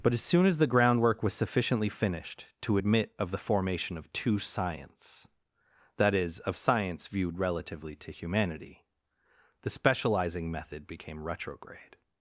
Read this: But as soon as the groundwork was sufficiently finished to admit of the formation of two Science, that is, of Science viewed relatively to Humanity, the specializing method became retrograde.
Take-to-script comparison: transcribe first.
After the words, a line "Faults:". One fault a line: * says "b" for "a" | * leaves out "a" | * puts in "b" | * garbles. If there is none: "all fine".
But as soon as the groundwork was sufficiently finished to admit of the formation of two Science, that is, of Science viewed relatively to Humanity, the specializing method became retrograde.
Faults:
all fine